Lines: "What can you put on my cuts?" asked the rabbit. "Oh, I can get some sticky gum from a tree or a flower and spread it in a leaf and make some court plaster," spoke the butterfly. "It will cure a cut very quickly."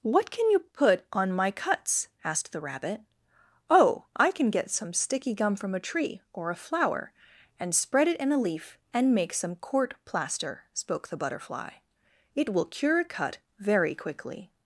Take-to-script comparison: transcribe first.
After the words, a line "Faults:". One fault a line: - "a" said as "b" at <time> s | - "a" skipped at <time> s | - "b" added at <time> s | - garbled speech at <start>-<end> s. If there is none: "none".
"What can you put on my cuts?" asked the rabbit. "Oh, I can get some sticky gum from a tree or a flower and spread it in a leaf and make some court plaster," spoke the butterfly. "It will cure a cut very quickly."
Faults:
none